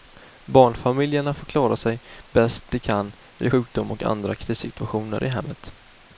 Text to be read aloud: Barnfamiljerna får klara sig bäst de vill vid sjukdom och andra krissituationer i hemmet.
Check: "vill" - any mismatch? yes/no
yes